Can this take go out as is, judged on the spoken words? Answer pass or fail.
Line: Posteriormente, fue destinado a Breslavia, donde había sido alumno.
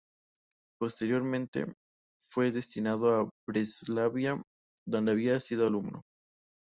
pass